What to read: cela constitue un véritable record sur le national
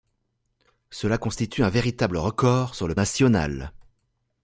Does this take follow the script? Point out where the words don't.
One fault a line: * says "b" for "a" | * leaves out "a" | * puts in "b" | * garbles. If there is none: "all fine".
all fine